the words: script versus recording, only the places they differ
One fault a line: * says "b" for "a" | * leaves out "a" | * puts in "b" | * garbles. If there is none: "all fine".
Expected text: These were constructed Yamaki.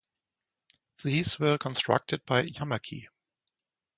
* puts in "by"